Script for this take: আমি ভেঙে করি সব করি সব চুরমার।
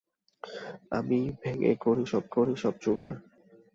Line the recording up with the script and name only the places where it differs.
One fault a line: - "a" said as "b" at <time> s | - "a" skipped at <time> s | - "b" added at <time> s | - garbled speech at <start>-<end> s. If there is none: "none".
none